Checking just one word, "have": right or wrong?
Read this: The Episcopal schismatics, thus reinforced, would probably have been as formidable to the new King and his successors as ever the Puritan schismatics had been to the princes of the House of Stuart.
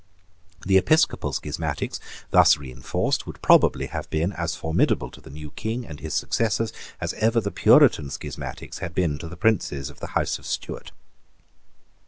right